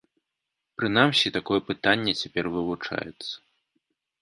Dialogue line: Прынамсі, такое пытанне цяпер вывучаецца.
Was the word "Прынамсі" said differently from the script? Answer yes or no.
no